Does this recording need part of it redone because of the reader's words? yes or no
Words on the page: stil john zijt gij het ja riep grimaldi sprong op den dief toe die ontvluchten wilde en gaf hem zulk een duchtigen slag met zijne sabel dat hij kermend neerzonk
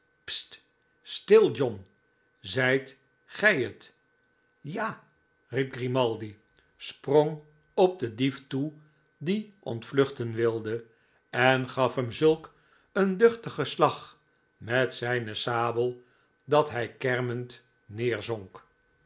no